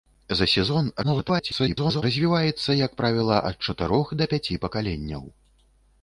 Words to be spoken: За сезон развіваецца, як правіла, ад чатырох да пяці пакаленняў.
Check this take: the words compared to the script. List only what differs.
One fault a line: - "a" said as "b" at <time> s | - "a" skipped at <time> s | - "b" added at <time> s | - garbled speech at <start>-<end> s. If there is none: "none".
- garbled speech at 1.0-2.0 s